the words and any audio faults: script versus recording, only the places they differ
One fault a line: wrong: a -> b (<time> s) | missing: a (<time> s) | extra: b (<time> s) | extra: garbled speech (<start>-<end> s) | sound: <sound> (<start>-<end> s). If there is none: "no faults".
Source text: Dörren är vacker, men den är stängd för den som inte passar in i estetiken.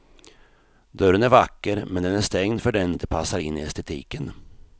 missing: som (3.0 s)